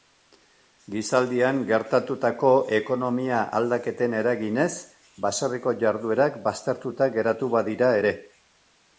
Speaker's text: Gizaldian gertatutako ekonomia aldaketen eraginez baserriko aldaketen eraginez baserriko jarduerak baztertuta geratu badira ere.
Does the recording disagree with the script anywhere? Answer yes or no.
yes